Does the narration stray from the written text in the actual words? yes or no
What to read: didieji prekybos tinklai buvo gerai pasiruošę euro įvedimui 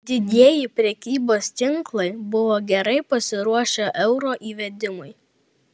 no